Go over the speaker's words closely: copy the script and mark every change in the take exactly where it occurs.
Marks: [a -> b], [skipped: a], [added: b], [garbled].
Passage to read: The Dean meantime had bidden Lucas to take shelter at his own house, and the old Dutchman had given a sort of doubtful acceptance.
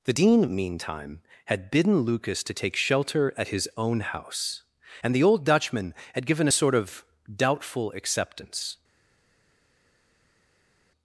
The Dean meantime had bidden Lucas to take shelter at his own house, and the old Dutchman had given a sort of doubtful acceptance.